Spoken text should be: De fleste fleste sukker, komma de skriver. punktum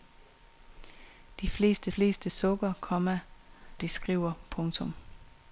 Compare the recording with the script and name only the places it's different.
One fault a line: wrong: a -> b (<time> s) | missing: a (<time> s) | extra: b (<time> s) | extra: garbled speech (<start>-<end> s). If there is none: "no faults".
no faults